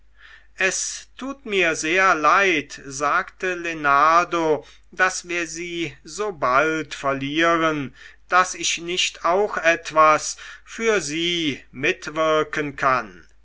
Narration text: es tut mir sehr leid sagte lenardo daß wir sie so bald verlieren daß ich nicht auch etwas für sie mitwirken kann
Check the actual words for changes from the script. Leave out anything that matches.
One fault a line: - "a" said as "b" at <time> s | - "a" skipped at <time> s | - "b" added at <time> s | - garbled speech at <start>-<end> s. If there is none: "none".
none